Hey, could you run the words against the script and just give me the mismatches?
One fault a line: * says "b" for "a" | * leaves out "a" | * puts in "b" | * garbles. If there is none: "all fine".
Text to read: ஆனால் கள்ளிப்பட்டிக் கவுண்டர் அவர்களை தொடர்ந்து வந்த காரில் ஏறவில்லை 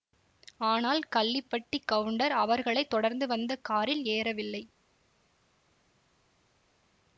all fine